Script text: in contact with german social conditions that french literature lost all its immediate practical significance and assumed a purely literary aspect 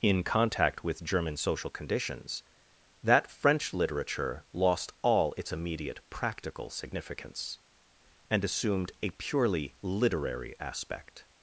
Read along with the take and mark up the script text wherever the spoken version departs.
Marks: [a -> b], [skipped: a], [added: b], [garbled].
in contact with german social conditions that french literature lost all its immediate practical significance and assumed a purely literary aspect